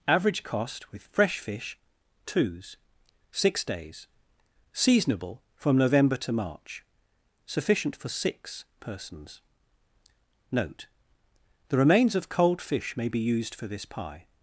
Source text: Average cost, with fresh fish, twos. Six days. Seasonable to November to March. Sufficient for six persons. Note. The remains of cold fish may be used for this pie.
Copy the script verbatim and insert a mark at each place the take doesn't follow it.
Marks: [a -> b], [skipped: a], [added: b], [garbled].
Average cost, with fresh fish, twos. Six days. Seasonable [to -> from] November to March. Sufficient for six persons. Note. The remains of cold fish may be used for this pie.